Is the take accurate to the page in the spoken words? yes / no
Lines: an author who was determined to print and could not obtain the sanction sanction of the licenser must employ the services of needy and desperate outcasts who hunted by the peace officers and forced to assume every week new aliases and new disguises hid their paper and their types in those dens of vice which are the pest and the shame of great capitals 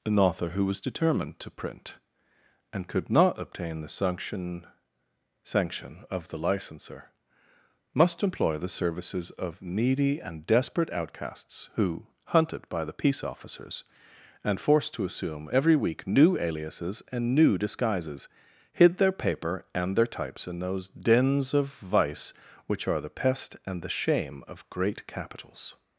yes